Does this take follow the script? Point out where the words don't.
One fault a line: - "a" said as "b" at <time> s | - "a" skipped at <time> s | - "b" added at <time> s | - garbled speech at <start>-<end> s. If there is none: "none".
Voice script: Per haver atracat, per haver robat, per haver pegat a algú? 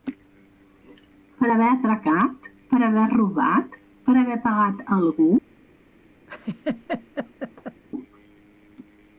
none